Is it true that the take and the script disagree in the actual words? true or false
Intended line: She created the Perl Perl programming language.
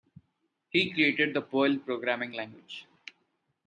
true